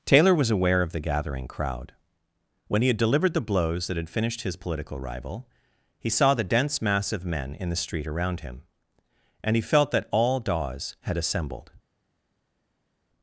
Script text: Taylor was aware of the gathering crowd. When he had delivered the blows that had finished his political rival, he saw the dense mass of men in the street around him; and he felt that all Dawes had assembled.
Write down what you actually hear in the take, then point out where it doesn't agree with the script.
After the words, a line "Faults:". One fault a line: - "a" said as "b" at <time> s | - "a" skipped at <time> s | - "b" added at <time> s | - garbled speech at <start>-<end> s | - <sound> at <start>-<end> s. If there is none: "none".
Taylor was aware of the gathering crowd. When he had delivered the blows that had finished his political rival, he saw the dense mass of men in the street around him; and he felt that all Dawes had assembled.
Faults:
none